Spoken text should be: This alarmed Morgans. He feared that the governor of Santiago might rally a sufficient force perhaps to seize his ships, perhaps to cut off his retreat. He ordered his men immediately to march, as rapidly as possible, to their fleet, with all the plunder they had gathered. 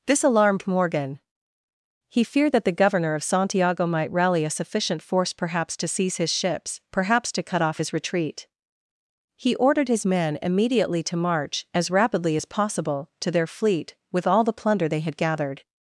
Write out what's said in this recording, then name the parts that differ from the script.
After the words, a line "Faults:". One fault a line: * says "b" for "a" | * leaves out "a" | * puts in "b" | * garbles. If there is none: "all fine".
This alarmed Morgan. He feared that the governor of Santiago might rally a sufficient force perhaps to seize his ships, perhaps to cut off his retreat. He ordered his men immediately to march, as rapidly as possible, to their fleet, with all the plunder they had gathered.
Faults:
* says "Morgan" for "Morgans"